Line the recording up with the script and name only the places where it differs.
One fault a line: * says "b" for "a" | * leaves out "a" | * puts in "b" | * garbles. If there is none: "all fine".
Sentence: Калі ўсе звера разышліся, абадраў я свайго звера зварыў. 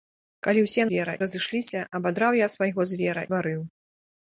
all fine